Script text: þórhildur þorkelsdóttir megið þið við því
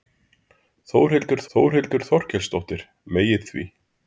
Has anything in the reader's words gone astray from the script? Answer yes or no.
yes